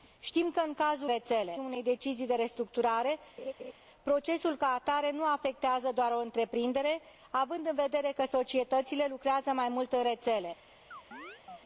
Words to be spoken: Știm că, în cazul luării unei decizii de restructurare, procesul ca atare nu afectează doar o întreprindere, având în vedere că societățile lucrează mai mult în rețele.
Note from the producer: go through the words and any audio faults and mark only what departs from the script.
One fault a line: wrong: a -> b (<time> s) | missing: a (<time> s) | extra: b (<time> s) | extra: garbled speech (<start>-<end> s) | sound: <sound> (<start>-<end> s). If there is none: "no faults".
wrong: luării -> rețele (1.1 s)
sound: laugh (3.4-3.7 s)
sound: chirp (10.9-11.6 s)